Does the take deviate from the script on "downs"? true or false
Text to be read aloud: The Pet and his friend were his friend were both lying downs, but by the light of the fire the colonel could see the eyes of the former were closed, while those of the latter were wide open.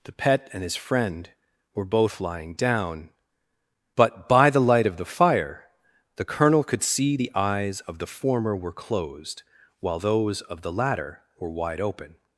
true